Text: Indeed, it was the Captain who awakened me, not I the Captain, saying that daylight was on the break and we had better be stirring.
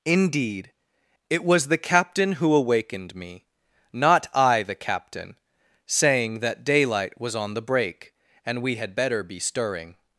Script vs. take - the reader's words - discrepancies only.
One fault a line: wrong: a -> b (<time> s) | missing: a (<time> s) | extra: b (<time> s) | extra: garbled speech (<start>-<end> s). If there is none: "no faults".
no faults